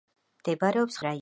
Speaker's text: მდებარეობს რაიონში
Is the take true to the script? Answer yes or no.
yes